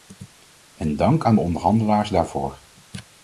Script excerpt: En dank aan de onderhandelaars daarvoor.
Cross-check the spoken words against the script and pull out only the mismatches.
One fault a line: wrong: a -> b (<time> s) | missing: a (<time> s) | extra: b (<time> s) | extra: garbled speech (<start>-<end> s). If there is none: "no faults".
no faults